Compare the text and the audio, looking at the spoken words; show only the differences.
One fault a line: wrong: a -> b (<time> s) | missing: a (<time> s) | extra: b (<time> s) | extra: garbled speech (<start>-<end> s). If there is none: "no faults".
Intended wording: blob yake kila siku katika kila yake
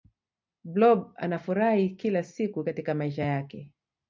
wrong: yake -> anafurahi (1.1 s)
wrong: kila -> maisha (2.9 s)